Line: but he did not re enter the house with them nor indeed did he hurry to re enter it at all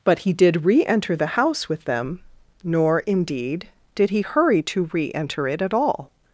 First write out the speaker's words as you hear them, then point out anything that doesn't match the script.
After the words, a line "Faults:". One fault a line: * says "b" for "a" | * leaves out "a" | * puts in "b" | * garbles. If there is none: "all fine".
but he did re enter the house with them nor indeed did he hurry to re enter it at all
Faults:
* leaves out "not"